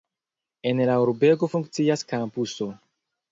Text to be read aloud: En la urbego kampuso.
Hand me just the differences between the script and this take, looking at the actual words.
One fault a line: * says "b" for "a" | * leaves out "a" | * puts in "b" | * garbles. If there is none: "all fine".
* puts in "funkcias"